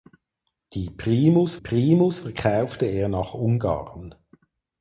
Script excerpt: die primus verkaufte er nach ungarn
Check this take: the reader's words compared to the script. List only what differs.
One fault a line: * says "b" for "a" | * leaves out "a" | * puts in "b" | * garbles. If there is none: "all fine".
* puts in "primus"